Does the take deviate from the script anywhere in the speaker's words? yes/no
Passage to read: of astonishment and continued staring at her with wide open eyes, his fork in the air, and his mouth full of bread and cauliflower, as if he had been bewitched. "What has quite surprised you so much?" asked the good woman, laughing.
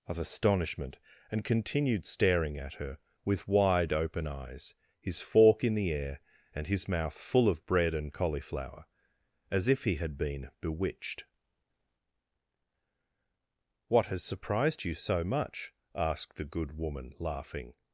yes